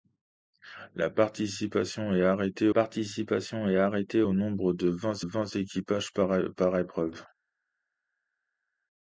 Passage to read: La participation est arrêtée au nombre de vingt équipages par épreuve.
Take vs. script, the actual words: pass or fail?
fail